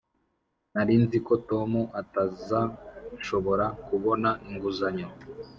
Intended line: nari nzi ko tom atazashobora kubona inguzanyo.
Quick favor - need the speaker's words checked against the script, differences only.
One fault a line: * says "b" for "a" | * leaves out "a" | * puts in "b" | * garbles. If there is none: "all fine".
all fine